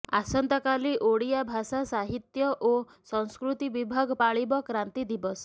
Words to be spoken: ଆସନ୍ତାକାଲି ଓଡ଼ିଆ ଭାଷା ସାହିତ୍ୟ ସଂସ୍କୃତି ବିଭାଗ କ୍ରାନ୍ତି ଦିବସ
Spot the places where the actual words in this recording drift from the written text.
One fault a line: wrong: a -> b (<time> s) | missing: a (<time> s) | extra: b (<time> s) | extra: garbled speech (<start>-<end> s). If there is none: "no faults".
extra: ଓ (2.6 s)
extra: ପାଳିବ (4.2 s)